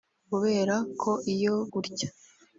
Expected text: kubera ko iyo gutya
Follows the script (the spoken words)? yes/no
yes